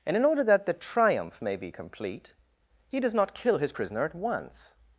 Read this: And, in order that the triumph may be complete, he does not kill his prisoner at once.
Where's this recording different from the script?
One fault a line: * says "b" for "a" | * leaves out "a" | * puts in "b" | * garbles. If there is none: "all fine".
all fine